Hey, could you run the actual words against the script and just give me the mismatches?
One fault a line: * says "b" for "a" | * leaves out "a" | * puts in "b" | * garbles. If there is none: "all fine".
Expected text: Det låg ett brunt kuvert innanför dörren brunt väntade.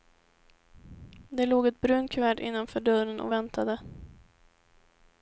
* says "och" for "brunt"